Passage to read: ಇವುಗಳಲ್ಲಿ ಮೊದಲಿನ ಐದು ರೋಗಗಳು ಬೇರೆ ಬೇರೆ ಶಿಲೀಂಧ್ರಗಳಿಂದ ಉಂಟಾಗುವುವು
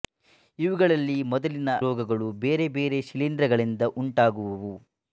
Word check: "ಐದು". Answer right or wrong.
wrong